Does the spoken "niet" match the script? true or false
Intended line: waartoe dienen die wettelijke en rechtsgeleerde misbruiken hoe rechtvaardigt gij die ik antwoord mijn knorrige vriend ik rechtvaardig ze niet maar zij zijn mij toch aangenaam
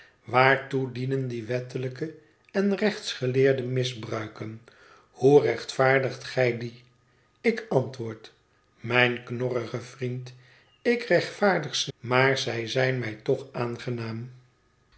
false